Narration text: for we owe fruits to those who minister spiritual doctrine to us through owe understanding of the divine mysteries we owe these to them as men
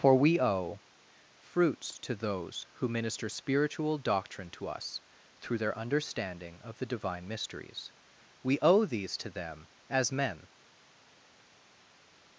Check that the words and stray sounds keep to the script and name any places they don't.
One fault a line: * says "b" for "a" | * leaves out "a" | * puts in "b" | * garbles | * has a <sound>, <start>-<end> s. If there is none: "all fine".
* says "their" for "owe"